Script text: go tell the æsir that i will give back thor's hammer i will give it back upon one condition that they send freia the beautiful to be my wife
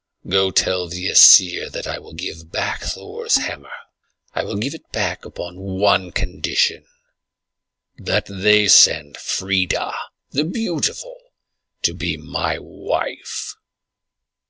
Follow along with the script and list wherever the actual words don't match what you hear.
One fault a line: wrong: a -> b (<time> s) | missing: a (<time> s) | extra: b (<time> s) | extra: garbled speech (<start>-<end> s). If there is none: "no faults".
no faults